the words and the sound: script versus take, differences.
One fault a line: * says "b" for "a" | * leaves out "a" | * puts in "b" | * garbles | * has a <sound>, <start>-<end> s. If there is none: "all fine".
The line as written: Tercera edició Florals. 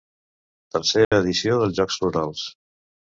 * has a dropout, 1.0-1.1 s
* puts in "dels Jocs"